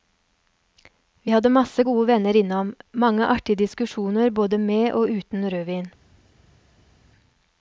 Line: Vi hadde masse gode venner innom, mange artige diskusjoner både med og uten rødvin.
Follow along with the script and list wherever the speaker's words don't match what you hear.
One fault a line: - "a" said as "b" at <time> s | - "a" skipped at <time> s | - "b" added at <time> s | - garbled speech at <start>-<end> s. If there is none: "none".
none